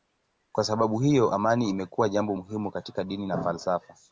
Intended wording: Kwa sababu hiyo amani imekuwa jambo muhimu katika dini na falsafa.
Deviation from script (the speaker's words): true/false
false